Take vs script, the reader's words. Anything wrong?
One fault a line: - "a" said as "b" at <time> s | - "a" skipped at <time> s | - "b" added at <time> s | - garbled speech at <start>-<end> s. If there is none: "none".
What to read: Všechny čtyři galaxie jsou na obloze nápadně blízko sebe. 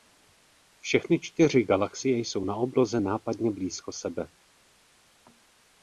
none